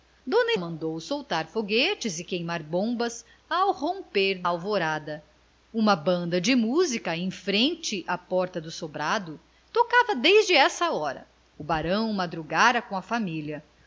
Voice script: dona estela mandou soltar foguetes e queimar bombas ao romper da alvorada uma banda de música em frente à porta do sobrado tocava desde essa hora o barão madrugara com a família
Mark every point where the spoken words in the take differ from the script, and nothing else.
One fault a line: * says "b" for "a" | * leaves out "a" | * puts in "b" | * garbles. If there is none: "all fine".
* leaves out "estela"
* leaves out "da"